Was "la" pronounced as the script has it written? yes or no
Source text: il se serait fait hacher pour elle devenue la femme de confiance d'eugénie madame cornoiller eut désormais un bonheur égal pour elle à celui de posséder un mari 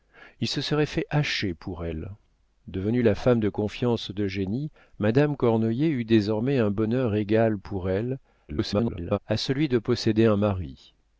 yes